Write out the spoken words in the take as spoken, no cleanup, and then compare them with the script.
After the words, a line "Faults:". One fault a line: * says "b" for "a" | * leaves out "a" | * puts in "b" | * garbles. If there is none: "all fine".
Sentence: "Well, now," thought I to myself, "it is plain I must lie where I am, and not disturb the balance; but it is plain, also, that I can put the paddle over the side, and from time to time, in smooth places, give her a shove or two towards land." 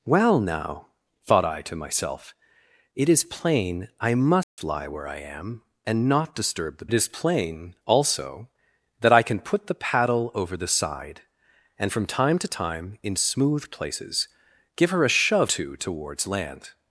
"Well, now," thought I to myself, "it is plain I must lie where I am, and not disturb the it is plain, also, that I can put the paddle over the side, and from time to time, in smooth places, give her a shove two towards land."
Faults:
* leaves out "balance but"
* leaves out "or"